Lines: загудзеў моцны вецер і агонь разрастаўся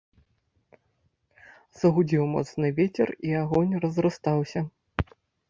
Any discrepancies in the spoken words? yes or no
no